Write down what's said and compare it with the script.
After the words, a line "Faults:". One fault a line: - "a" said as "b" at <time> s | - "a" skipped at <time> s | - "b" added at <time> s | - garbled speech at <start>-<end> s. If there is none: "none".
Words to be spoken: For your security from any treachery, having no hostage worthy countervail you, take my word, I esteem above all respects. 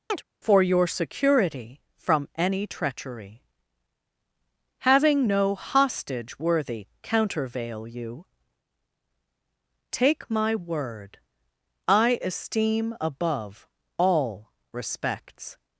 For your security from any treachery, having no hostage worthy countervail you, take my word, I esteem above all respects.
Faults:
none